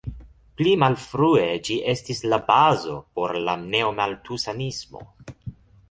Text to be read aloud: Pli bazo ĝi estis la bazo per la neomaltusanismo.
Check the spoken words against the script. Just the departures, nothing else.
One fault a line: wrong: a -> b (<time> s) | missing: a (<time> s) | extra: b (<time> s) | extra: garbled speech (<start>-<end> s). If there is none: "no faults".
wrong: bazo -> malfrue (0.8 s)
wrong: per -> por (3.2 s)